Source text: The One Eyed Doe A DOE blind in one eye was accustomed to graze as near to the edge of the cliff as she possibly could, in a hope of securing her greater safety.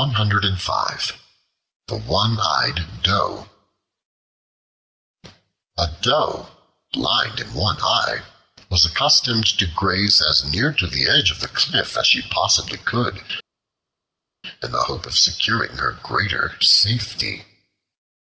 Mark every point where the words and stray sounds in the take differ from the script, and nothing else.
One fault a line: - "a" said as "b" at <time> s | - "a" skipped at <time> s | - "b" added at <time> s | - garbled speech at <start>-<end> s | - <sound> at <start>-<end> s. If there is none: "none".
- "a" said as "the" at 14.7 s